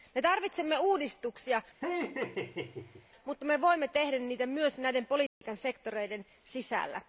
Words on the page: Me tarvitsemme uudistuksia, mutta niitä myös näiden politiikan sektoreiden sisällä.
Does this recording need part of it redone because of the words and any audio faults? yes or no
yes